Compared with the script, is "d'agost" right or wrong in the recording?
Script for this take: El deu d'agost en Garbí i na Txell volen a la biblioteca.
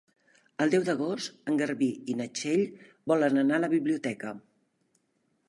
right